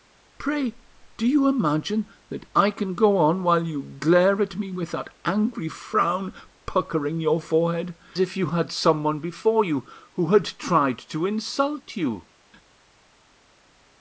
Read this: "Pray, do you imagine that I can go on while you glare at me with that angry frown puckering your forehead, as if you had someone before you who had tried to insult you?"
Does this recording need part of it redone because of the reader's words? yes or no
yes